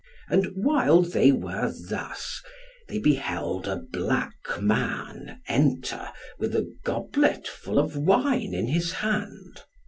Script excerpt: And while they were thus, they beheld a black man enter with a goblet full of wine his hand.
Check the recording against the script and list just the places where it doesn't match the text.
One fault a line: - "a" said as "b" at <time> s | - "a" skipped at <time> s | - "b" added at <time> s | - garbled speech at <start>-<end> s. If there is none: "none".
- "in" added at 8.5 s